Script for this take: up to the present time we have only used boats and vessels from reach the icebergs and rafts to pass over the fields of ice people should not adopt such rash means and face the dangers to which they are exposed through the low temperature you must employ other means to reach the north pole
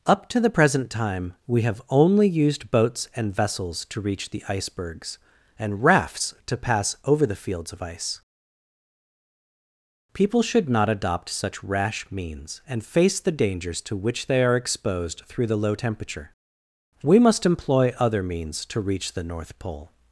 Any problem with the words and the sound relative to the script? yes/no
yes